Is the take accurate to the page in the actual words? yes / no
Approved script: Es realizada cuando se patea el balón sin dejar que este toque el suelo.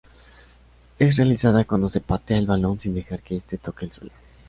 yes